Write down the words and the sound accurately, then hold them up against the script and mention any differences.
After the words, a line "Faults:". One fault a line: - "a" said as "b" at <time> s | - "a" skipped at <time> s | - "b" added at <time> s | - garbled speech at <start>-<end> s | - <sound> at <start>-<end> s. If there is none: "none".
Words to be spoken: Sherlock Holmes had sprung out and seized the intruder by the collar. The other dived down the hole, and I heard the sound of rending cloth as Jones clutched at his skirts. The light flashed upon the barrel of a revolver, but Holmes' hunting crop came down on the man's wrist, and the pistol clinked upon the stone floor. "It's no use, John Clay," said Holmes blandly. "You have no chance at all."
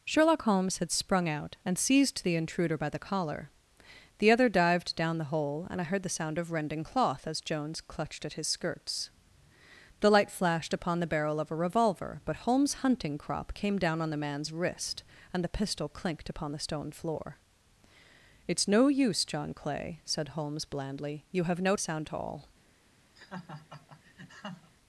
Sherlock Holmes had sprung out and seized the intruder by the collar. The other dived down the hole, and I heard the sound of rending cloth as Jones clutched at his skirts. The light flashed upon the barrel of a revolver, but Holmes' hunting crop came down on the man's wrist, and the pistol clinked upon the stone floor. "It's no use, John Clay," said Holmes blandly. "You have no sound at all."
Faults:
- "chance" said as "sound" at 21.8 s
- laugh at 23.2-24.7 s